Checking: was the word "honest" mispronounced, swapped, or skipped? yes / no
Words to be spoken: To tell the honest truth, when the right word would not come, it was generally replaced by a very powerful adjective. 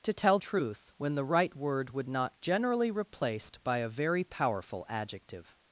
yes